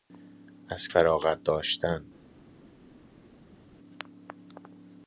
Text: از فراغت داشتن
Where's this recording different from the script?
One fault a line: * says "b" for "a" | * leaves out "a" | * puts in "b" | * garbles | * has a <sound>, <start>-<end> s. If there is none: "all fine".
all fine